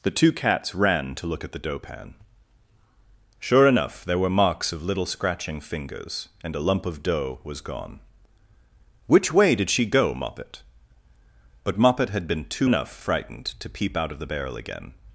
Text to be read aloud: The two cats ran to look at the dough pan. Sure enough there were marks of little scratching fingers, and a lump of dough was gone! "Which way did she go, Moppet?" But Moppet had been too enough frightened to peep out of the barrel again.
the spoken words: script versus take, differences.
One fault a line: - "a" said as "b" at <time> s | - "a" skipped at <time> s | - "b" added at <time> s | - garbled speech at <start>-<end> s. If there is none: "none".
none